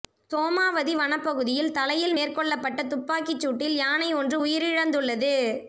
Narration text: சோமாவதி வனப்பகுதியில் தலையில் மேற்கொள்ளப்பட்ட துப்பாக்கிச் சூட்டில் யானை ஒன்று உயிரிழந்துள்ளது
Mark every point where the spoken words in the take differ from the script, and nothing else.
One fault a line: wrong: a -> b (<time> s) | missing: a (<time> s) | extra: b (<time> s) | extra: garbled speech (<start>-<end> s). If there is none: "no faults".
no faults